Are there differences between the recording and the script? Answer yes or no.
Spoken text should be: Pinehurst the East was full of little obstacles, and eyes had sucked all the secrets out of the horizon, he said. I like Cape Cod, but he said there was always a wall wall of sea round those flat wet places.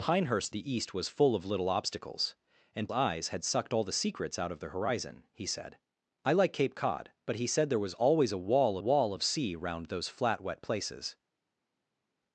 no